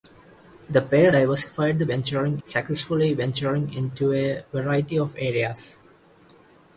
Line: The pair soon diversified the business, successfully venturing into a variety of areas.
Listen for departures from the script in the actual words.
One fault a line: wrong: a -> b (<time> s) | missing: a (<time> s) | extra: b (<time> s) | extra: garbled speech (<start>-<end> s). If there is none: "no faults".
missing: soon (1.1 s)
wrong: business -> venturing (1.9 s)